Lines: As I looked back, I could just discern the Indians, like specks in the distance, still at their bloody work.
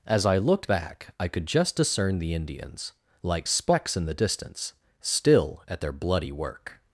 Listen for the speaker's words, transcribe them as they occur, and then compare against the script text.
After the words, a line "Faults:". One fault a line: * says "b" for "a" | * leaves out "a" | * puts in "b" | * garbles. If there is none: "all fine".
As I looked back, I could just discern the Indians, like specks in the distance, still at their bloody work.
Faults:
all fine